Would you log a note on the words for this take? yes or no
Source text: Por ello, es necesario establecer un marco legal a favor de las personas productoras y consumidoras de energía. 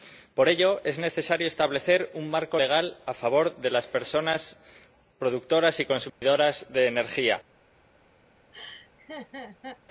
no